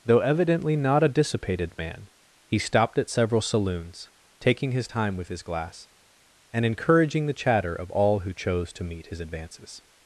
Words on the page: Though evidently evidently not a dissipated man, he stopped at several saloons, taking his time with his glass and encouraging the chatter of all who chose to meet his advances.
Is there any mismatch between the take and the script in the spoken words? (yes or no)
yes